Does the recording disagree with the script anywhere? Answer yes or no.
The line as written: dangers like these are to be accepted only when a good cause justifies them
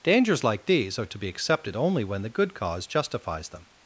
yes